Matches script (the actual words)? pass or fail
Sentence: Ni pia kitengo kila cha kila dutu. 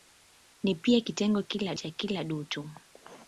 pass